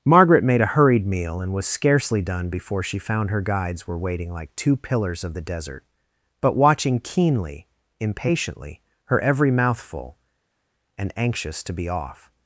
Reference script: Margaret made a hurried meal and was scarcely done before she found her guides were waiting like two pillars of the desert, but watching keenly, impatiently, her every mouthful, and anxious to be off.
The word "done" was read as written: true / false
true